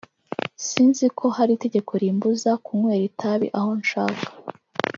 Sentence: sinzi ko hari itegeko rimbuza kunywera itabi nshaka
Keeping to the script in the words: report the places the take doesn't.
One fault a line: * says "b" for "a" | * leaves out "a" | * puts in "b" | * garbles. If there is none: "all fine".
* puts in "aho"